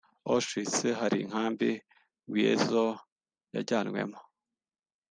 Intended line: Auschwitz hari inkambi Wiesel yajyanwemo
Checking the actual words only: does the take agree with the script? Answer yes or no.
yes